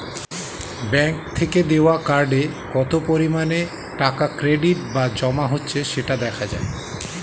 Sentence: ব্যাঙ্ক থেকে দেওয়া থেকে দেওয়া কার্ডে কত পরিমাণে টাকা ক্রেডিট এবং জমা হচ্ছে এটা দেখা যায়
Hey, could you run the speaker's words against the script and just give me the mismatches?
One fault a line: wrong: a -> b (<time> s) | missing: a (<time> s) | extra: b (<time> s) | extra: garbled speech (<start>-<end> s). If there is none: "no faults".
missing: থেকে দেওয়া (1.9 s)
wrong: এবং -> বা (4.9 s)
wrong: এটা -> সেটা (5.9 s)